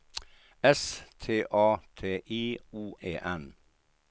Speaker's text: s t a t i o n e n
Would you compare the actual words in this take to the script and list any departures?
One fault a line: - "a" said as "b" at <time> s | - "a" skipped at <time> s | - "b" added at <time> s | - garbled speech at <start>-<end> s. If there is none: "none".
- "n" skipped at 3.0 s